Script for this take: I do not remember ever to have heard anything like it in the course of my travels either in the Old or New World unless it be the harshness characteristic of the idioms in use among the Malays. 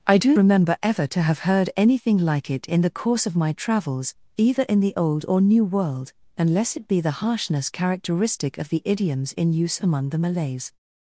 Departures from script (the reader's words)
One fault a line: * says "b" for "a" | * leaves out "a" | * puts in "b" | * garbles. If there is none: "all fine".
* leaves out "not"